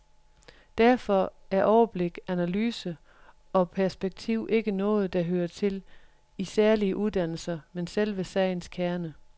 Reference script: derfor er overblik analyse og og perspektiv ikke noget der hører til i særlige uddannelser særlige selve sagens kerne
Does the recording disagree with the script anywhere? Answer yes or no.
yes